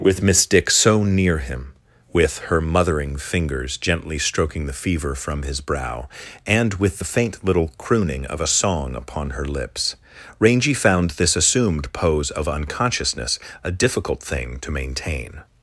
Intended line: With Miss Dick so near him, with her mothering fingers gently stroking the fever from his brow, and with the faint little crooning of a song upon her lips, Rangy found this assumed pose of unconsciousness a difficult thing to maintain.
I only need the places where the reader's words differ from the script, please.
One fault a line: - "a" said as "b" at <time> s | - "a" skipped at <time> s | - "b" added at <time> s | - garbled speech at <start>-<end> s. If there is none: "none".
none